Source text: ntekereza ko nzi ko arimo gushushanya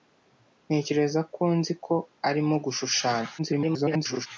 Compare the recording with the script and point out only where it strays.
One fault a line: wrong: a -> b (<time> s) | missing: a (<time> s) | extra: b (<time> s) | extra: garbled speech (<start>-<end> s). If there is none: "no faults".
extra: garbled speech (3.4-4.3 s)